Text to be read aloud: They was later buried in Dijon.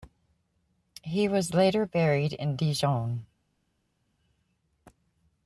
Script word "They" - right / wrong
wrong